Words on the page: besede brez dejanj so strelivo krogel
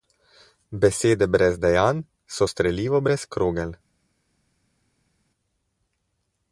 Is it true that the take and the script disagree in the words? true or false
true